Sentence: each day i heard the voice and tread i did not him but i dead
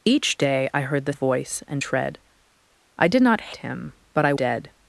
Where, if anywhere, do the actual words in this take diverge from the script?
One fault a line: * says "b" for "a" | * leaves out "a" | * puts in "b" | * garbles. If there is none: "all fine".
all fine